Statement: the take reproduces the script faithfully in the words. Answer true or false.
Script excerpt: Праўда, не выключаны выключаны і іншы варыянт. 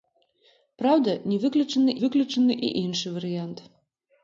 true